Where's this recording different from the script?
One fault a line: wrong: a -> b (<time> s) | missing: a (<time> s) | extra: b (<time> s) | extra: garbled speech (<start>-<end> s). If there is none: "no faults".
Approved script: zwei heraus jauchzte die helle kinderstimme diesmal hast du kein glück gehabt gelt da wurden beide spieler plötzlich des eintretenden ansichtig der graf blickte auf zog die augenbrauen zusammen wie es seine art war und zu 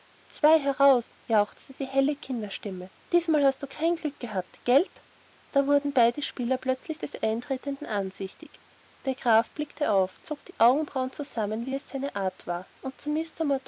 no faults